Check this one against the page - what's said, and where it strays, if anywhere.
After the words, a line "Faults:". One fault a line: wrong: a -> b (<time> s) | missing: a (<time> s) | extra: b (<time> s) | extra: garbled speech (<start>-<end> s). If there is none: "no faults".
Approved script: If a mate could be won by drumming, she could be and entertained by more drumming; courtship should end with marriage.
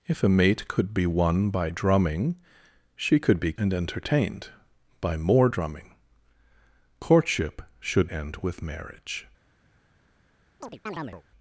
If a mate could be won by drumming, she could be and entertained by more drumming; courtship should end with marriage.
Faults:
no faults